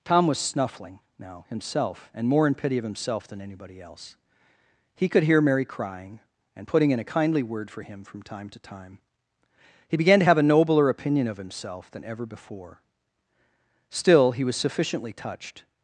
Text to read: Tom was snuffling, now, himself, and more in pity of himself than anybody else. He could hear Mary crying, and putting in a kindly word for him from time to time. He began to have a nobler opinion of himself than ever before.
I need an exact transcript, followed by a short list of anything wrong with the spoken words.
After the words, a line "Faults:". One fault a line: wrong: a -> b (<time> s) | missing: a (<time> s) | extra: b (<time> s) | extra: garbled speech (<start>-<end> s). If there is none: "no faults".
Tom was snuffling, now, himself, and more in pity of himself than anybody else. He could hear Mary crying, and putting in a kindly word for him from time to time. He began to have a nobler opinion of himself than ever before. Still, he was sufficiently touched
Faults:
extra: Still he was sufficiently touched (13.9 s)